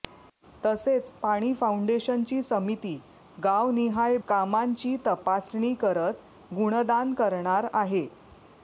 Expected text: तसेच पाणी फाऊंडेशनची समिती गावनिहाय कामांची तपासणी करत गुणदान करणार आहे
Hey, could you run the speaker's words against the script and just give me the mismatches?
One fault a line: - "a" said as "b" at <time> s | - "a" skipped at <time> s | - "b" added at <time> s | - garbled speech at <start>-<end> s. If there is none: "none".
none